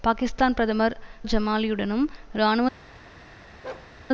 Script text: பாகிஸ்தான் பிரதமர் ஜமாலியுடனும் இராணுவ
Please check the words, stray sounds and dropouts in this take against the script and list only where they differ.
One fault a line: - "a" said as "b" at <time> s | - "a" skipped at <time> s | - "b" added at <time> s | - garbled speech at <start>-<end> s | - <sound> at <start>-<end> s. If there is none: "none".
- bark at 3.6-3.9 s